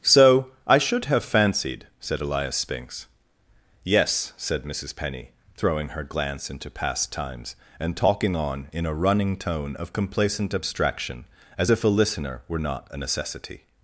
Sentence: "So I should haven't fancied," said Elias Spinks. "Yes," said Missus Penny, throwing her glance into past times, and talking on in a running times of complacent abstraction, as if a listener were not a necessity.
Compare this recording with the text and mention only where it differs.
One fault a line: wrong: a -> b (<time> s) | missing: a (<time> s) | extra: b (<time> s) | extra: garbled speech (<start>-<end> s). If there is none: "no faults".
wrong: haven't -> have (1.1 s)
wrong: times -> tone (9.4 s)